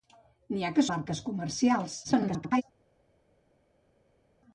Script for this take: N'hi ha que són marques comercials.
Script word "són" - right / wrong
wrong